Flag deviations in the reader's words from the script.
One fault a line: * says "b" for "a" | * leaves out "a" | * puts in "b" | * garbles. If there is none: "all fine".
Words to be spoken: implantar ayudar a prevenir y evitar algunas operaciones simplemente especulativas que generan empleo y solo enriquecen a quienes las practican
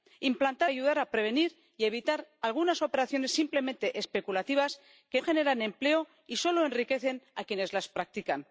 all fine